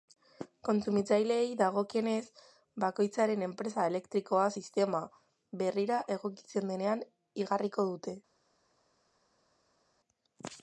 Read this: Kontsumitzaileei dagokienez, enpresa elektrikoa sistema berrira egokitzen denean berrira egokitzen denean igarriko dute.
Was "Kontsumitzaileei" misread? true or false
false